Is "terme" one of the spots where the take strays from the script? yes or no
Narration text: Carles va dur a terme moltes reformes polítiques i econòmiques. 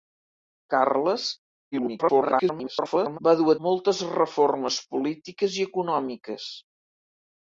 yes